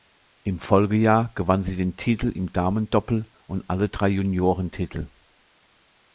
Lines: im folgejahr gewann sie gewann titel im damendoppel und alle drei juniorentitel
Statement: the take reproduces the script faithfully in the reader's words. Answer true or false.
false